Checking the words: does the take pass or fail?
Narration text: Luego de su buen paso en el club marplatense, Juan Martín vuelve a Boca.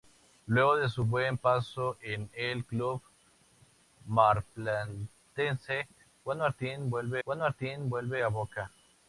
fail